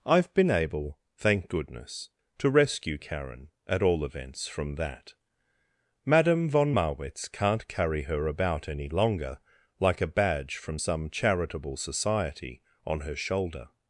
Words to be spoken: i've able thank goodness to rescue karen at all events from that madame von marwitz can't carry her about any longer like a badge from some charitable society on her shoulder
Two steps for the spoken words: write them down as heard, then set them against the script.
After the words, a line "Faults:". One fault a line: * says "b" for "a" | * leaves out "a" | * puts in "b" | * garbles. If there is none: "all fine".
i've been able thank goodness to rescue karen at all events from that madame von marwitz can't carry her about any longer like a badge from some charitable society on her shoulder
Faults:
* puts in "been"